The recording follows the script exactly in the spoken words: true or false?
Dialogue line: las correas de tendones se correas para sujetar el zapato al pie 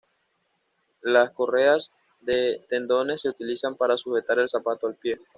false